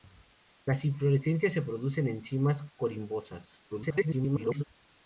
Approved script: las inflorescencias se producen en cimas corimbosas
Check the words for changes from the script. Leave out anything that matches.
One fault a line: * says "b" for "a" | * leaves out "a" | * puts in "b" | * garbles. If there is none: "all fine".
* garbles